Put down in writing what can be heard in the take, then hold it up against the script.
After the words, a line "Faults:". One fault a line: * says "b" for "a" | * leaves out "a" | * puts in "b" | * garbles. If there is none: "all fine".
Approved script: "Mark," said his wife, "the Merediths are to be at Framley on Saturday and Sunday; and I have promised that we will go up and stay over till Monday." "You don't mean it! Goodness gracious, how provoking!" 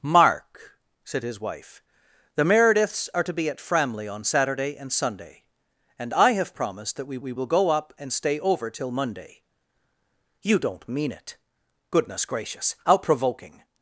"Mark," said his wife, "the Merediths are to be at Framley on Saturday and Sunday; and I have promised that we we will go up and stay over till Monday." "You don't mean it! Goodness gracious, how provoking!"
Faults:
* puts in "we"